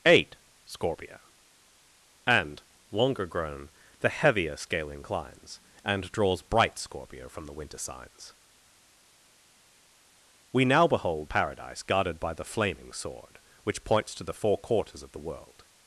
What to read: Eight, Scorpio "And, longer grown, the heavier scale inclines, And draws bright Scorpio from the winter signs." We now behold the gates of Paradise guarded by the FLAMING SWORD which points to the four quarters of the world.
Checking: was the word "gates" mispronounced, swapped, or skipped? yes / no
yes